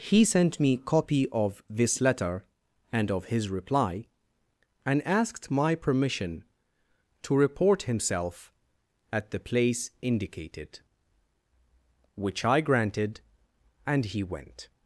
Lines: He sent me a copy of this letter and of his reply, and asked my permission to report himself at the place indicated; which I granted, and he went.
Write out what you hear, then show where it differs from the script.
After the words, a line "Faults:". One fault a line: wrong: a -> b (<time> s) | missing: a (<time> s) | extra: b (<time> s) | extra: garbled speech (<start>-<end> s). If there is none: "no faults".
He sent me copy of this letter and of his reply, and asked my permission to report himself at the place indicated; which I granted, and he went.
Faults:
missing: a (0.8 s)